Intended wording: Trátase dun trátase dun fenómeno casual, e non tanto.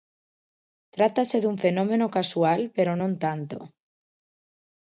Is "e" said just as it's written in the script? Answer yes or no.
no